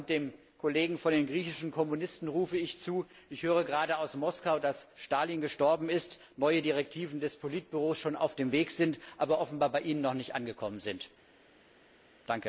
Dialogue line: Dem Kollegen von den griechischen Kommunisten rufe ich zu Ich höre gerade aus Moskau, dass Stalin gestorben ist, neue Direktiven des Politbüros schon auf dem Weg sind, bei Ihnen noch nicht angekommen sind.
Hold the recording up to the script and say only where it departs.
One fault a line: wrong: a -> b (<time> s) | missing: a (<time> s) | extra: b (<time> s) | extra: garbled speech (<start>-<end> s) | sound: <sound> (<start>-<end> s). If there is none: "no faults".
extra: aber offenbar (9.2 s)